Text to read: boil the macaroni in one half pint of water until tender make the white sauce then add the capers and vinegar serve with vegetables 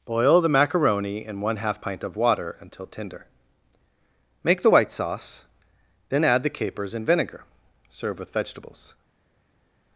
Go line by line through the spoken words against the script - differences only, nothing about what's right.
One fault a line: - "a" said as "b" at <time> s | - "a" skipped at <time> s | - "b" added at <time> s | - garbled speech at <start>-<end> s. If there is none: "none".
none